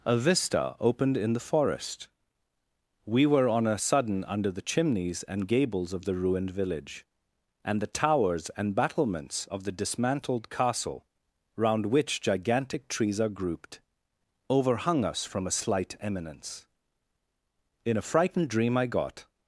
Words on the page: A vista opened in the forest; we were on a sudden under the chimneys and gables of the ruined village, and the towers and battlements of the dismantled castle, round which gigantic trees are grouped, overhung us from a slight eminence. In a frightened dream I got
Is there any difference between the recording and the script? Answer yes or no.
no